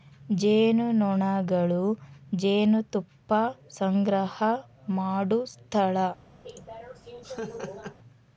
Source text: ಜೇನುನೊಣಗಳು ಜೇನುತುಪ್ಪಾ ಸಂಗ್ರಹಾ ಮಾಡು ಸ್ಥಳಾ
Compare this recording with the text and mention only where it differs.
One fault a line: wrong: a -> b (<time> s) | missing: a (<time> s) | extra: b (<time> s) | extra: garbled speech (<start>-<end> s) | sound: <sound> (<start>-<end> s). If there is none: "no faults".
sound: laugh (6.4-8.0 s)